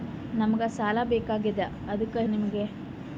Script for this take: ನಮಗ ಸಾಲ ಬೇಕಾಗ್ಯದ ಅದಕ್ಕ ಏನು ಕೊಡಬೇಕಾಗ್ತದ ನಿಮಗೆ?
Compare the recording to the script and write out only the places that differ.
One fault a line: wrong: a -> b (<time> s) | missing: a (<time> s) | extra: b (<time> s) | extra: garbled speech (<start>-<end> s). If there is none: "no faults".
missing: ಏನು ಕೊಡಬೇಕಾಗ್ತದ (2.2 s)